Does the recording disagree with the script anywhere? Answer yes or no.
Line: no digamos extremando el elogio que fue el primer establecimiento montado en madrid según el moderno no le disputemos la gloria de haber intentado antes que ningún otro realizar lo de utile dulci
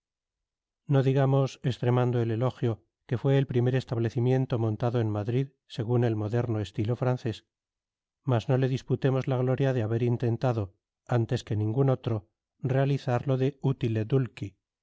yes